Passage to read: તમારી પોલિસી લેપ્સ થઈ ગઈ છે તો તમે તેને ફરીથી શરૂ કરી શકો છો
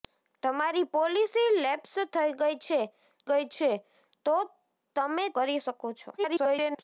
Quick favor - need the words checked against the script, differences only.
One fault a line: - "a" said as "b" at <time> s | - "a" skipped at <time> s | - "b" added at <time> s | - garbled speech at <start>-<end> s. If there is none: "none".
- "ગઈ છે" added at 3.3 s
- "તેને ફરીથી શરૂ" skipped at 5.3 s
- garbled speech at 6.2-6.8 s